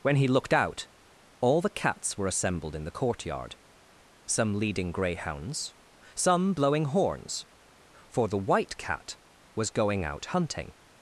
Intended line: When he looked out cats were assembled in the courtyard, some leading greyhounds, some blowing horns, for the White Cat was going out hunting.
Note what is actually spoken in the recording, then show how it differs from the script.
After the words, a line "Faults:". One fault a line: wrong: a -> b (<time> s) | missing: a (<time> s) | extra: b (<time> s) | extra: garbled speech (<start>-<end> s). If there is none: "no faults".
When he looked out all the cats were assembled in the courtyard, some leading greyhounds, some blowing horns, for the White Cat was going out hunting.
Faults:
extra: all the (1.4 s)